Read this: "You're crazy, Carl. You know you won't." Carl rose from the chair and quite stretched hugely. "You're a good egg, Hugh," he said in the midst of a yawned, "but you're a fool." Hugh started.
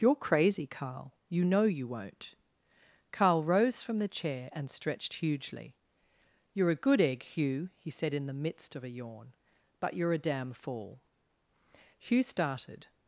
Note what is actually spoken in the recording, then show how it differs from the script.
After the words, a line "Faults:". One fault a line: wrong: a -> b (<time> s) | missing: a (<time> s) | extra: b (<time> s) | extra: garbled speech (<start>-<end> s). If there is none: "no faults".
"You're crazy, Carl. You know you won't." Carl rose from the chair and stretched hugely. "You're a good egg, Hugh," he said in the midst of a yawn, "but you're a damn fool." Hugh started.
Faults:
missing: quite (4.7 s)
wrong: yawned -> yawn (8.9 s)
extra: damn (10.2 s)